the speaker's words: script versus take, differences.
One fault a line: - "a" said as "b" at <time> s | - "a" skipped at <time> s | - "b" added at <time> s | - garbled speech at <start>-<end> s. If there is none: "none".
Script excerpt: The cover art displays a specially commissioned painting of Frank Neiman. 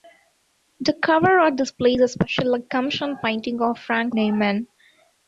none